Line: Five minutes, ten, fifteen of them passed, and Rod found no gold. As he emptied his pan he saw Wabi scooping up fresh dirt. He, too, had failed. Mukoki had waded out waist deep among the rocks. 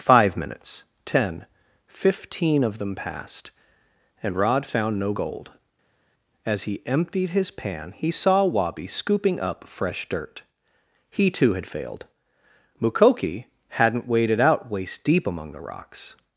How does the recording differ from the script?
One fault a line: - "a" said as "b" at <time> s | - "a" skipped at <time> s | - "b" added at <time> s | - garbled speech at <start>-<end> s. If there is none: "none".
- "had" said as "hadn't" at 13.7 s